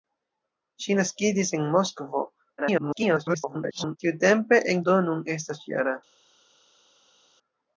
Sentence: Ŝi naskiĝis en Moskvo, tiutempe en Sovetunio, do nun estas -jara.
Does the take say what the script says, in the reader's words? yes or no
no